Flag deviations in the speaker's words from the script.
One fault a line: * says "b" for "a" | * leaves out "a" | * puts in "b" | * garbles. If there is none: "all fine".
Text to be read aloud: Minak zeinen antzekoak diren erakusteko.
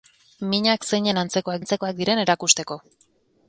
* puts in "antzekoak"